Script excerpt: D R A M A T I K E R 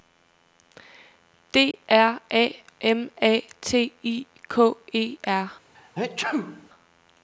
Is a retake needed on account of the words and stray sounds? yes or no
yes